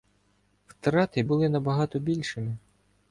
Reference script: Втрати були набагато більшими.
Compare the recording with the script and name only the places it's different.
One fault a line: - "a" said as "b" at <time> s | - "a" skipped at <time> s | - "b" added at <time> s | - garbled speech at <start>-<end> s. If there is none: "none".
none